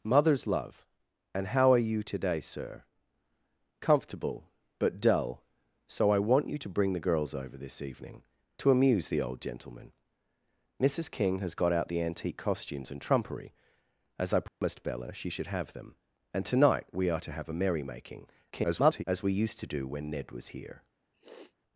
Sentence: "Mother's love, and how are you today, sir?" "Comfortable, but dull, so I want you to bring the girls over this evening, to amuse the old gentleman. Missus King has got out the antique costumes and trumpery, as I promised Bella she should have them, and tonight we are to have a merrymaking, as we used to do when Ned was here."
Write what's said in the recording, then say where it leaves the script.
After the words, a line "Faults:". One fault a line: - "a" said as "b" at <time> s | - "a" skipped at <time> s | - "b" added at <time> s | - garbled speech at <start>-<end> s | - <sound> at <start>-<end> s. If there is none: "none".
"Mother's love, and how are you today, sir?" "Comfortable, but dull, so I want you to bring the girls over this evening, to amuse the old gentleman. Missus King has got out the antique costumes and trumpery, as I promised Bella she should have them, and tonight we are to have a merrymaking, [garbled] as we used to do when Ned was here."
Faults:
- dropout at 14.5-14.6 s
- garbled speech at 18.5-19.0 s
- sniff at 21.1-21.6 s